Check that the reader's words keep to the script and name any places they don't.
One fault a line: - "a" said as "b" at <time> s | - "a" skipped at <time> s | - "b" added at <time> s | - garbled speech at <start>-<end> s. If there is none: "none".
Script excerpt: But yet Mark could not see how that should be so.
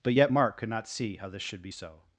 - "that" said as "this" at 1.3 s